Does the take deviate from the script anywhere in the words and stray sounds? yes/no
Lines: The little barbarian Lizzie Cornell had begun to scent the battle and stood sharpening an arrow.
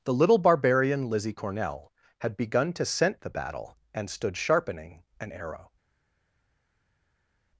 no